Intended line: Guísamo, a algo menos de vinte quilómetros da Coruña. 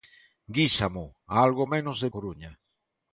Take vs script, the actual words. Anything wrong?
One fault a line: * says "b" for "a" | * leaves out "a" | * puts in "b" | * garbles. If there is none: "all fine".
* leaves out "vinte quilómetros da"